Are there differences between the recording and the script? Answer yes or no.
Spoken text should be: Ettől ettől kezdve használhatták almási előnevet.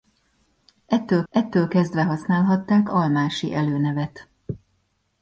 no